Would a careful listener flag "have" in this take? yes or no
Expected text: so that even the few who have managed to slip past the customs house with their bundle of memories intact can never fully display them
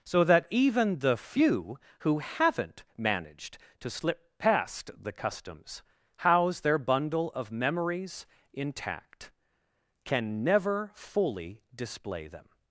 yes